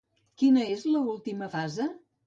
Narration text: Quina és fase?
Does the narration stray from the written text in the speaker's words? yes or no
yes